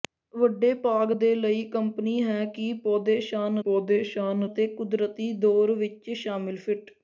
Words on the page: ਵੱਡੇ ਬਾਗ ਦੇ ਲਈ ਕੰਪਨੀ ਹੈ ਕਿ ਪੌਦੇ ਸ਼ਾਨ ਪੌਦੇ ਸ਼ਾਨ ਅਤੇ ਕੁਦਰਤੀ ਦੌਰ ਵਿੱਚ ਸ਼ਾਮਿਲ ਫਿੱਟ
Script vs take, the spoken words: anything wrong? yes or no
no